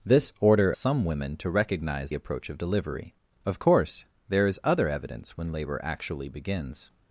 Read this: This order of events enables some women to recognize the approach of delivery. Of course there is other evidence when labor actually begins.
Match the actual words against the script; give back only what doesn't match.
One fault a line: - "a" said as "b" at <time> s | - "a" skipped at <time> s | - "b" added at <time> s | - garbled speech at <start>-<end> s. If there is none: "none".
- "of events enables" skipped at 0.7 s
- "the" skipped at 2.1 s